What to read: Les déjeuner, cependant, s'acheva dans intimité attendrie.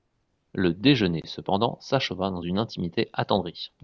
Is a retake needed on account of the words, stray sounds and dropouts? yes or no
yes